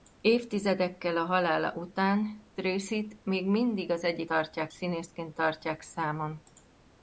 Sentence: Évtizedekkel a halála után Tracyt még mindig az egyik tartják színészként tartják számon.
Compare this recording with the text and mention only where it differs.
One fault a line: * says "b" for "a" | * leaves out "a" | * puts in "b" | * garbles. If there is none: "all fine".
all fine